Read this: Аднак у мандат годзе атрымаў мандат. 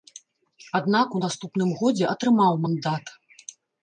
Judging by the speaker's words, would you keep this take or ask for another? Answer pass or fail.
fail